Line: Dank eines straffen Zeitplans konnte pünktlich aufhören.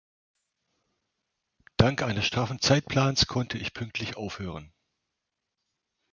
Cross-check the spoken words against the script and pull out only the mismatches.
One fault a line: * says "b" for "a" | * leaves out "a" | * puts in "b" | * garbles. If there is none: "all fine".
* puts in "ich"